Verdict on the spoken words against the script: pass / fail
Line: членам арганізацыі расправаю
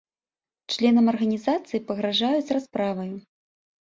fail